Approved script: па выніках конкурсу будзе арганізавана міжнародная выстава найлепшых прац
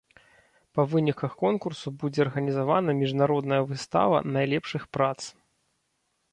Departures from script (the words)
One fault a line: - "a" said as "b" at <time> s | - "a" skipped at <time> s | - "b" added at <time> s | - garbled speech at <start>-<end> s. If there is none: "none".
none